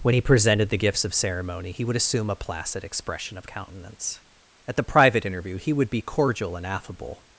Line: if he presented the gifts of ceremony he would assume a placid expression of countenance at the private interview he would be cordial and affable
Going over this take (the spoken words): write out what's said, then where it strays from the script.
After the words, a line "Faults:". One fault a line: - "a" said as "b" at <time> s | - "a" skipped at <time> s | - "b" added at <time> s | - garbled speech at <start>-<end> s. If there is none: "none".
when he presented the gifts of ceremony he would assume a placid expression of countenance at the private interview he would be cordial and affable
Faults:
- "if" said as "when" at 0.0 s